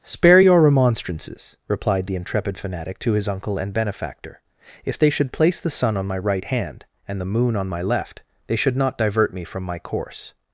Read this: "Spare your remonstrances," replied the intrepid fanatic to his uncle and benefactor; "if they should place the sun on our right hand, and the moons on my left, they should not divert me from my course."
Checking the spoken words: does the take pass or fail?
fail